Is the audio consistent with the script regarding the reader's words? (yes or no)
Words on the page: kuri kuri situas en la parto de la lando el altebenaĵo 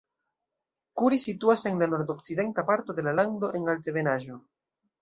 no